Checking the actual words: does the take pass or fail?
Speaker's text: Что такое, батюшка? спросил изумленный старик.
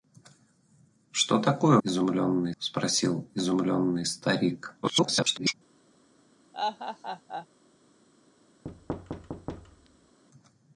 fail